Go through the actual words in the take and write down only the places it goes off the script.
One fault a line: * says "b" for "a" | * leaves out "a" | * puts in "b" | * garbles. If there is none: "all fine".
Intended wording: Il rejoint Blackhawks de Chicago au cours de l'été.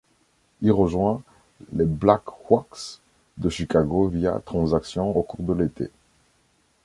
* puts in "les"
* puts in "via transaction"